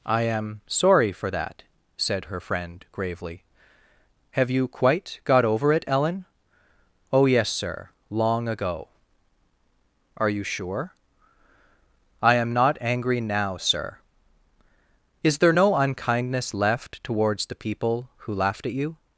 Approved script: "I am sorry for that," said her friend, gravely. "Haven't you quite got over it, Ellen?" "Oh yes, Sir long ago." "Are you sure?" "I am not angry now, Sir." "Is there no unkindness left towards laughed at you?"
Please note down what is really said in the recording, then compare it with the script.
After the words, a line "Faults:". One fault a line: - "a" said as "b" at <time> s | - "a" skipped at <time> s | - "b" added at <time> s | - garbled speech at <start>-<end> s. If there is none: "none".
"I am sorry for that," said her friend, gravely. "Have you quite got over it, Ellen?" "Oh yes, Sir long ago." "Are you sure?" "I am not angry now, Sir." "Is there no unkindness left towards the people who laughed at you?"
Faults:
- "Haven't" said as "Have" at 4.3 s
- "the people who" added at 17.5 s